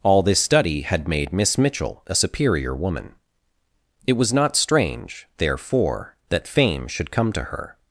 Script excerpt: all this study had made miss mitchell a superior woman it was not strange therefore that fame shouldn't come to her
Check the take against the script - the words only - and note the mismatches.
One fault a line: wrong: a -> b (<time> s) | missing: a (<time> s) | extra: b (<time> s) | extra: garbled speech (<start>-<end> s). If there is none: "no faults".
wrong: shouldn't -> should (6.9 s)